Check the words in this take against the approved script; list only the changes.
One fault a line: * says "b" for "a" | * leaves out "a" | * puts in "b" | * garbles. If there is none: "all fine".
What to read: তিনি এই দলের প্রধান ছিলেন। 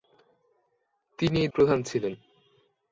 * leaves out "দলের"